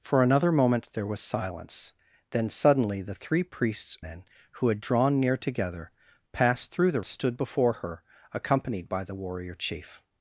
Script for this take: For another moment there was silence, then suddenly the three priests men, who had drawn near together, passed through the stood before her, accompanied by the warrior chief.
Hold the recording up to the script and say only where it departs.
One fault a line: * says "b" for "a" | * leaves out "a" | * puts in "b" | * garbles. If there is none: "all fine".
all fine